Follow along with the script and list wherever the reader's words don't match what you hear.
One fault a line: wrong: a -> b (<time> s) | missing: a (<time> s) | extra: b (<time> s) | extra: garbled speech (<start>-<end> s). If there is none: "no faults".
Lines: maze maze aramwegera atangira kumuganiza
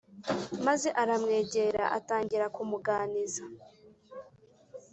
missing: maze (0.9 s)